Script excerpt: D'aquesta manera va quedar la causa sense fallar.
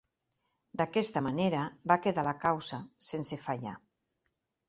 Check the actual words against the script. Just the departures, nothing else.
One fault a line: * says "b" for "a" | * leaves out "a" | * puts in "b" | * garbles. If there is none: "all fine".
all fine